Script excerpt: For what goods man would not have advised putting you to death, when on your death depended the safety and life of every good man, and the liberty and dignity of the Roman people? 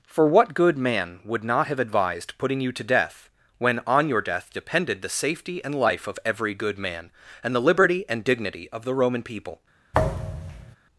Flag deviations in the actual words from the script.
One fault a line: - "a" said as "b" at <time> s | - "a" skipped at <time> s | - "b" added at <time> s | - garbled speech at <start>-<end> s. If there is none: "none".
- "goods" said as "good" at 0.5 s